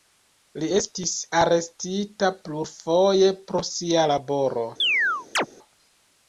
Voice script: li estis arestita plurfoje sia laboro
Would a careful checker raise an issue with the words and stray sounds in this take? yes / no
yes